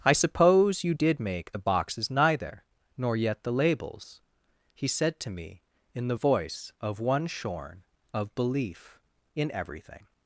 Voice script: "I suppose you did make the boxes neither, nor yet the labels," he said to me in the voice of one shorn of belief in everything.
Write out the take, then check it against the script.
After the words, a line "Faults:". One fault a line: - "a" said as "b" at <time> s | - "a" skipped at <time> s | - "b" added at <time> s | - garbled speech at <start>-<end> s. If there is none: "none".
"I suppose you did make the boxes neither, nor yet the labels," he said to me in the voice of one shorn of belief in everything.
Faults:
none